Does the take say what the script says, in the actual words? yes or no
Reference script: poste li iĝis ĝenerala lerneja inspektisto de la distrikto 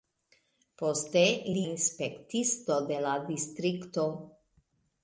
no